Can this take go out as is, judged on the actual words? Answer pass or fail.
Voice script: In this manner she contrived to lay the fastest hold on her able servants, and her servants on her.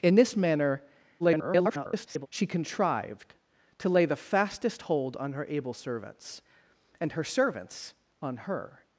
fail